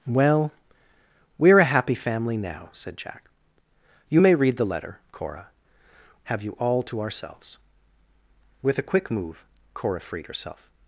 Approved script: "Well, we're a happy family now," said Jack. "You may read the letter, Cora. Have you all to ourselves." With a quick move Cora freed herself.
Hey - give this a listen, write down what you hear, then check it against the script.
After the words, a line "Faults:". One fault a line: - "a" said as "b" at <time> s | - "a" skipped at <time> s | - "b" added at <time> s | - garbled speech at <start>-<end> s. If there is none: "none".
"Well, we're a happy family now," said Jack. "You may read the letter, Cora. Have you all to ourselves." With a quick move Cora freed herself.
Faults:
none